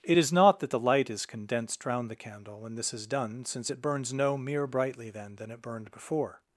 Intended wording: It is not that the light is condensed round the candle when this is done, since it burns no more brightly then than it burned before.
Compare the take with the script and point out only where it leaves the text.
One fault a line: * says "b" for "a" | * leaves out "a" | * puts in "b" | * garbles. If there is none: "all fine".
* says "mere" for "more"